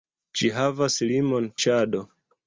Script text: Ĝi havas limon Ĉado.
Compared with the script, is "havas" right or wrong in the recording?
right